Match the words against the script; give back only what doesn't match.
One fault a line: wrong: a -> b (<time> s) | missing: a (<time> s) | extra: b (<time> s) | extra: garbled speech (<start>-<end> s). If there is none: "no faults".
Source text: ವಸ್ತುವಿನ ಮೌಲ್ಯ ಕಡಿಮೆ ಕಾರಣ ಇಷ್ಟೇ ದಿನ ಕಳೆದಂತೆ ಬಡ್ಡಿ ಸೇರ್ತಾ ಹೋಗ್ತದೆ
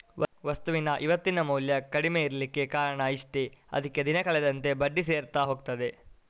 extra: ಇವತ್ತಿನ (1.0 s)
extra: ಇರ್ಲಿಕ್ಕೆ (2.2 s)
extra: ಅದ್ಕೆ (3.7 s)